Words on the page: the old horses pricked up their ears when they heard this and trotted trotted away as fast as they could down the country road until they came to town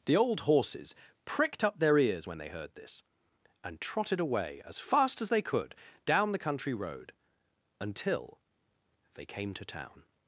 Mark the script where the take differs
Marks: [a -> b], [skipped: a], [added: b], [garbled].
the old horses pricked up their ears when they heard this and trotted [skipped: trotted] away as fast as they could down the country road until they came to town